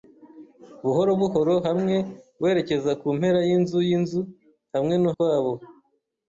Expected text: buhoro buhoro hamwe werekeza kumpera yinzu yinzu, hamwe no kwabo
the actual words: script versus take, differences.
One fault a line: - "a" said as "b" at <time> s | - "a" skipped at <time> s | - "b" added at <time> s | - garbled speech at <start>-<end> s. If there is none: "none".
none